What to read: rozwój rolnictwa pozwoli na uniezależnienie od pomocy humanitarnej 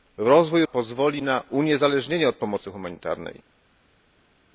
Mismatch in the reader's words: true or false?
true